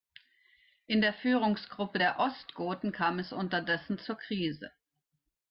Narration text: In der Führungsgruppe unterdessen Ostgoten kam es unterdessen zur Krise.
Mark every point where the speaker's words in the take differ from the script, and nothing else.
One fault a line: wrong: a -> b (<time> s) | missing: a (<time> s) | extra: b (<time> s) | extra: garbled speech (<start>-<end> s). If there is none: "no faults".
wrong: unterdessen -> der (2.0 s)